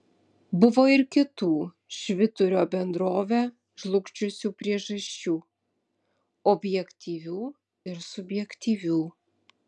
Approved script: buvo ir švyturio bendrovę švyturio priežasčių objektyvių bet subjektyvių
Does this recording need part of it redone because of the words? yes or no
yes